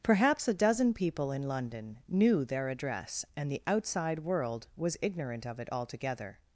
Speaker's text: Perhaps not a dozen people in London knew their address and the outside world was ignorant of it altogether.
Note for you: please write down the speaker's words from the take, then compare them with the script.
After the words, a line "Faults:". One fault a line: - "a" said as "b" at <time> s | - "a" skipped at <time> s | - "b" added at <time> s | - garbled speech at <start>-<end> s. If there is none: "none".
Perhaps a dozen people in London knew their address and the outside world was ignorant of it altogether.
Faults:
- "not" skipped at 0.5 s